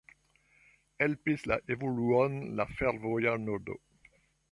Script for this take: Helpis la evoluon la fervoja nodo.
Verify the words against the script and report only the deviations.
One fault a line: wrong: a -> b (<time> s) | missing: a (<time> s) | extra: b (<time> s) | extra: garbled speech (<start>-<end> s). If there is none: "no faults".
no faults